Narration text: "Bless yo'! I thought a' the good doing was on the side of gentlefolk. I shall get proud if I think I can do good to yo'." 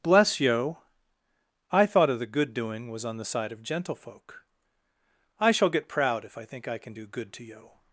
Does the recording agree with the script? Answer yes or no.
no